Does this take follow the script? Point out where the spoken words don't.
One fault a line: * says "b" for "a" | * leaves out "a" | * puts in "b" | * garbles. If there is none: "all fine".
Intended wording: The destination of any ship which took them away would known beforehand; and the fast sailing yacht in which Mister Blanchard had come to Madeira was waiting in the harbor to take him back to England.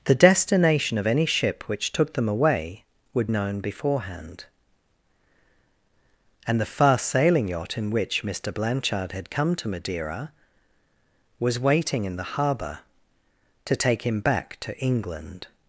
all fine